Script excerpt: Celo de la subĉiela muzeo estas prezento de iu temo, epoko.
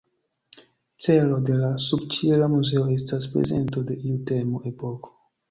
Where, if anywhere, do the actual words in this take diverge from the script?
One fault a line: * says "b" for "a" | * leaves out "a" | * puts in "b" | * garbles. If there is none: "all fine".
all fine